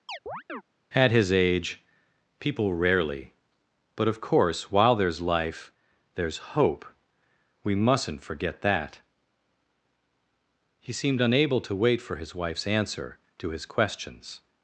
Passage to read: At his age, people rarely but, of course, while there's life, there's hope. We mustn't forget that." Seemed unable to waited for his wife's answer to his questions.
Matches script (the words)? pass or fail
fail